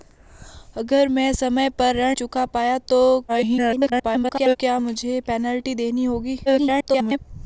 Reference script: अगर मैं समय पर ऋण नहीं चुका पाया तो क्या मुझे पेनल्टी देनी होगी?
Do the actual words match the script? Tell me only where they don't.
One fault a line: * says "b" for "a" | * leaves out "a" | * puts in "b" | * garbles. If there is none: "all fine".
* leaves out "नहीं"
* garbles
* garbles